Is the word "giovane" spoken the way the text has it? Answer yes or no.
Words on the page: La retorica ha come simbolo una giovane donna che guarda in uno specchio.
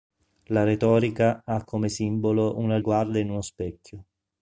no